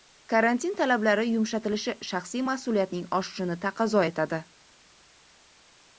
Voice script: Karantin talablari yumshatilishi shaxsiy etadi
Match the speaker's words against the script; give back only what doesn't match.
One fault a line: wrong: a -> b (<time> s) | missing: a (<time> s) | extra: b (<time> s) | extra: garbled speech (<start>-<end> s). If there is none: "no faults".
extra: mas'uliyatning oshishini taqozo (2.5 s)